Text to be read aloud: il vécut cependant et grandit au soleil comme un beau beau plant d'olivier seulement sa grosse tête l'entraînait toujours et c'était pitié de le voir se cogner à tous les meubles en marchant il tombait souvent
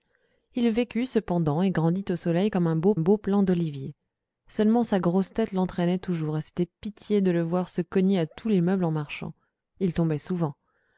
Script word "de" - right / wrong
right